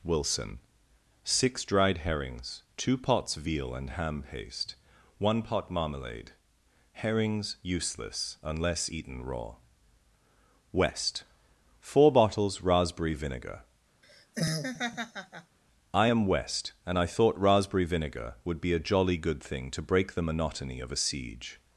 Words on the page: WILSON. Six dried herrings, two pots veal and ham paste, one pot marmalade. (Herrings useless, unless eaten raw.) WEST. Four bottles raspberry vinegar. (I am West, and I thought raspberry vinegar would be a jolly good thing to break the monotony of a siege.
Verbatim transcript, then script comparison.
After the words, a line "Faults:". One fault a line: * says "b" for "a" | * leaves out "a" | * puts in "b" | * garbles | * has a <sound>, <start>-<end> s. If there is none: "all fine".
WILSON. Six dried herrings, two pots veal and ham paste, one pot marmalade. (Herrings useless, unless eaten raw.) WEST. Four bottles raspberry vinegar. (I am West, and I thought raspberry vinegar would be a jolly good thing to break the monotony of a siege.
Faults:
* has a laugh, 14.0-15.6 s